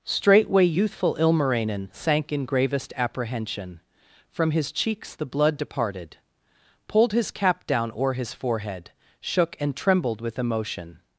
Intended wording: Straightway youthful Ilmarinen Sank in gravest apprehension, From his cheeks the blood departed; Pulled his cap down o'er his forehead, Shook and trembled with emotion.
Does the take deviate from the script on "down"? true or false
false